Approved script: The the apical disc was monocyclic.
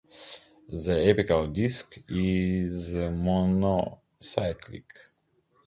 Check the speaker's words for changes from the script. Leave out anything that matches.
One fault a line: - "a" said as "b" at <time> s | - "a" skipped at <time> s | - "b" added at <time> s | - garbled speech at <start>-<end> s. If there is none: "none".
- "the" skipped at 0.9 s
- "was" said as "is" at 2.1 s